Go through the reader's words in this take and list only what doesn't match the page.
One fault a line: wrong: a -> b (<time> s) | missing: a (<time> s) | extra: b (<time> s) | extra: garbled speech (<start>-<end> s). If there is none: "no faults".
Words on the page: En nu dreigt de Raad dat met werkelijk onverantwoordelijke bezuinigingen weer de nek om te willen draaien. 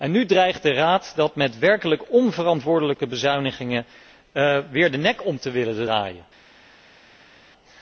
no faults